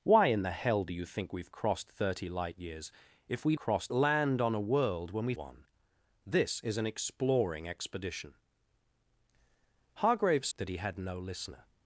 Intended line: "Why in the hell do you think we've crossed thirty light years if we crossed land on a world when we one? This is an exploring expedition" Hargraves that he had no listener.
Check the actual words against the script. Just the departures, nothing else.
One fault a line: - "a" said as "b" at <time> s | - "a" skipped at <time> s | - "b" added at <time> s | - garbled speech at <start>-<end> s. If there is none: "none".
none